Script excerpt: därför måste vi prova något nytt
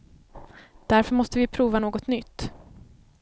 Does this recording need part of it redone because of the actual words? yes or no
no